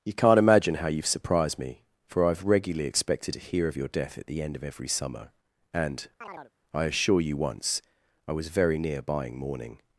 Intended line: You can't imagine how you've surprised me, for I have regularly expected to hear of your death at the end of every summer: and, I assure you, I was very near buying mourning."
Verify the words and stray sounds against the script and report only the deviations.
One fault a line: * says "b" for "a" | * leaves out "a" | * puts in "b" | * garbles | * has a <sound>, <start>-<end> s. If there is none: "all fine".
* has a chirp, 6.2-6.5 s
* puts in "once"